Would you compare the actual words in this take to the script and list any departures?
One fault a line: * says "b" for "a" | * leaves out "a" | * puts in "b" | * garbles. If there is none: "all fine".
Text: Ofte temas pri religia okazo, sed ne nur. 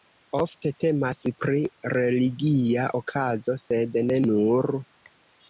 all fine